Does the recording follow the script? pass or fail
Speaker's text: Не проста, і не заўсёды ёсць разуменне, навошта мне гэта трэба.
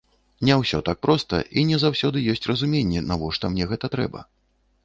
fail